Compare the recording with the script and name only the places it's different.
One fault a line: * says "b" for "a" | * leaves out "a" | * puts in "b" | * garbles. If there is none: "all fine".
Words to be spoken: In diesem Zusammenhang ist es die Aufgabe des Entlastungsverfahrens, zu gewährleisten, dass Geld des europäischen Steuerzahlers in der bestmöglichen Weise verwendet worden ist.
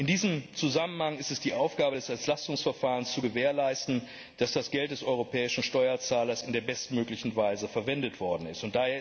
* puts in "das"